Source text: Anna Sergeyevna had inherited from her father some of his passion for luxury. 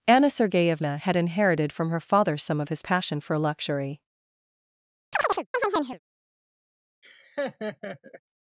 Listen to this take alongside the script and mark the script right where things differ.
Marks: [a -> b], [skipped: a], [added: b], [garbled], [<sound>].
Anna Sergeyevna had inherited from her father some of his passion for luxury. [chirp] [laugh]